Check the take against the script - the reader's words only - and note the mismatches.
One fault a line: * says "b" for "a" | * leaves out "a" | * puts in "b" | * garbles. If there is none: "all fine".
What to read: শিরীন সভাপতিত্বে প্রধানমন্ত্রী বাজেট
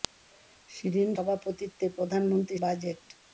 all fine